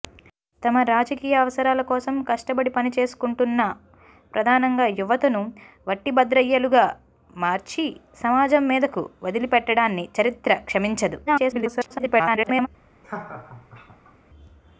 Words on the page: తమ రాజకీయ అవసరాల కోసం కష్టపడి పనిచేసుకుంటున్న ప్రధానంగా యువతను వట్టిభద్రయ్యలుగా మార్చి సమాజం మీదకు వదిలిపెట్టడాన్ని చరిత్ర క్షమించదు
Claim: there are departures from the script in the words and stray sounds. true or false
true